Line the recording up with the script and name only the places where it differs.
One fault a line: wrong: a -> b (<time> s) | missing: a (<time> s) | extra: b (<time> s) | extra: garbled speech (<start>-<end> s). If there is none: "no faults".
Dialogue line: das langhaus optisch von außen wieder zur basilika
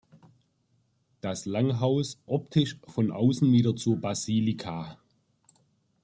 no faults